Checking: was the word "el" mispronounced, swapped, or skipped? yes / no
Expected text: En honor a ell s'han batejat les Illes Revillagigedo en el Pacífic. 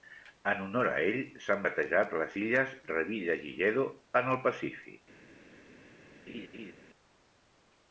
no